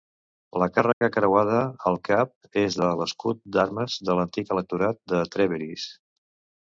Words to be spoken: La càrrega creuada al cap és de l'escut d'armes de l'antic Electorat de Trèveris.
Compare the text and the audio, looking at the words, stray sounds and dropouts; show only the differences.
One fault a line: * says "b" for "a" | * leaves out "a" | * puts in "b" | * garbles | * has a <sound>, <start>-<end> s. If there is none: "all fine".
* has a dropout, 0.9-1.0 s